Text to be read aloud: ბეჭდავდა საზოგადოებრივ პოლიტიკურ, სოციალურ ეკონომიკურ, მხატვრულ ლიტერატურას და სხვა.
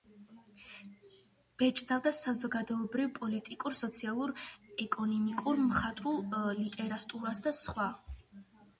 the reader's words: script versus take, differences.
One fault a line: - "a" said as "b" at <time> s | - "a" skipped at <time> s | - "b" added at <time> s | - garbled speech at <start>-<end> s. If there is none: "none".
none